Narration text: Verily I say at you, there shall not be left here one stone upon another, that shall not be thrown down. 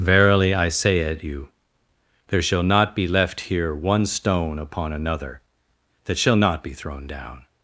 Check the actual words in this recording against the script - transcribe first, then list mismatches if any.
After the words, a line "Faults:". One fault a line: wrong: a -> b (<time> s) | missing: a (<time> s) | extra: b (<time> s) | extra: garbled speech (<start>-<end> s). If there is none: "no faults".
Verily I say at you, there shall not be left here one stone upon another, that shall not be thrown down.
Faults:
no faults